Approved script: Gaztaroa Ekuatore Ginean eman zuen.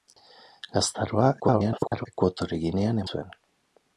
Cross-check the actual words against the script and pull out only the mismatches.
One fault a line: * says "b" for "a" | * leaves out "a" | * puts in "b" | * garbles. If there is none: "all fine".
* garbles
* leaves out "eman"